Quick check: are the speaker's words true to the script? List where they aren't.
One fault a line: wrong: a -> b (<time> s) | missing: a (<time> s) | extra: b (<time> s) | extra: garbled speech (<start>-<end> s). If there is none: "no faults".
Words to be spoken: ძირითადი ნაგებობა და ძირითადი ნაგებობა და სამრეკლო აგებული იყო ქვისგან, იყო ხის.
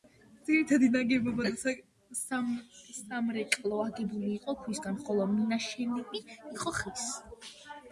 missing: ძირითადი ნაგებობა და (1.7 s)
extra: ხოლო მინაშენები (5.1 s)